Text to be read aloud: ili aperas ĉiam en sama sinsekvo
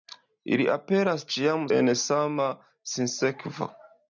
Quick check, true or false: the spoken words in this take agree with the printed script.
true